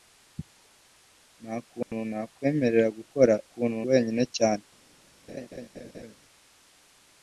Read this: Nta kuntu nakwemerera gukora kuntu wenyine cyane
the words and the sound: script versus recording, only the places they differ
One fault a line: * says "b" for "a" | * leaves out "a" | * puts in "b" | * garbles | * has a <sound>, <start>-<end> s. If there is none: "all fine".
* has a dropout, 1.8-1.9 s
* has a laugh, 5.3-6.2 s